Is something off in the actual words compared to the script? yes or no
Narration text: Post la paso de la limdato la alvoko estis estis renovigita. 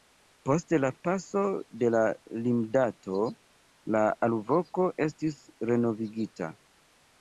yes